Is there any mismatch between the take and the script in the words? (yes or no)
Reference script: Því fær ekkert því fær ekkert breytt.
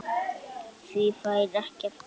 yes